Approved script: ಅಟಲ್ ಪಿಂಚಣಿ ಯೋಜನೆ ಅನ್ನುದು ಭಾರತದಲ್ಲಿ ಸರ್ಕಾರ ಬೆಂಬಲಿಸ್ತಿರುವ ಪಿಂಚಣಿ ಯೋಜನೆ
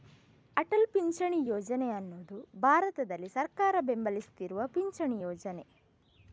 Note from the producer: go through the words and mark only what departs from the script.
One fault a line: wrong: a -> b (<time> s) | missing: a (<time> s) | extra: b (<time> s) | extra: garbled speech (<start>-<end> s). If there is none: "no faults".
no faults